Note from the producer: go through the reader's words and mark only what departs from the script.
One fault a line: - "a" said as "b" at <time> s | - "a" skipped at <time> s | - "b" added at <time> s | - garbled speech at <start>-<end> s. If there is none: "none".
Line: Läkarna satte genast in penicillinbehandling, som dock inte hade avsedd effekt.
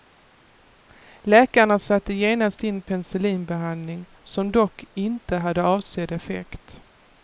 none